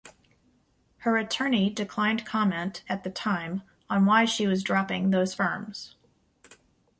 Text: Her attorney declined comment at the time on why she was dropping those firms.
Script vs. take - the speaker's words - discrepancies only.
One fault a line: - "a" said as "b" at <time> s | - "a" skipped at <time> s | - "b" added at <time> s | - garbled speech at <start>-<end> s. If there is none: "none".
none